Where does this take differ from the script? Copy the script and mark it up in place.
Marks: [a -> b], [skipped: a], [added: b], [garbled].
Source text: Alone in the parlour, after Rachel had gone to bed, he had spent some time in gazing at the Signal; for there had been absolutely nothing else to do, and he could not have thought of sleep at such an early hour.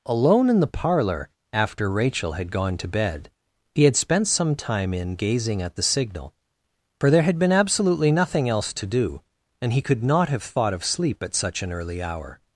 Alone in the parlour, after Rachel had gone to bed, he had spent some time in gazing at the Signal; for there had been absolutely nothing else to do, and he could not have thought of sleep at such an early hour.